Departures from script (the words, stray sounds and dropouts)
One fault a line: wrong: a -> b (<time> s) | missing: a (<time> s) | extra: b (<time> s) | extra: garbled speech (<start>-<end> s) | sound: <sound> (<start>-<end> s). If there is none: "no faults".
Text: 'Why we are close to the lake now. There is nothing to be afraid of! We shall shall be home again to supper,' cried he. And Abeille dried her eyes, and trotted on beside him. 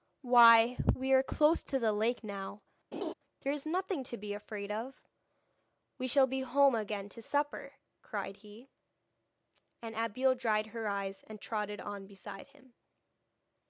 sound: laugh (2.9-3.1 s)
missing: shall (6.3 s)